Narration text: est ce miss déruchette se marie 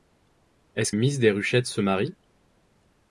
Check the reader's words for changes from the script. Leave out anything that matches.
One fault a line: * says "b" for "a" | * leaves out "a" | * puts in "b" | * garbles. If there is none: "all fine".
all fine